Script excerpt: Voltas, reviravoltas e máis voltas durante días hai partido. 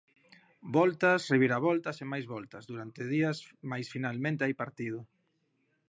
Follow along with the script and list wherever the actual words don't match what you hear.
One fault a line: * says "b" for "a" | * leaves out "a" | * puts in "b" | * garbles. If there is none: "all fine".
* puts in "mais finalmente"